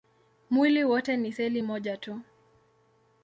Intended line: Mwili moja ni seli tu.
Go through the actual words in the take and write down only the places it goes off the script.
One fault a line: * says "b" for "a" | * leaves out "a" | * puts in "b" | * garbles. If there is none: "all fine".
* says "wote" for "moja"
* puts in "moja"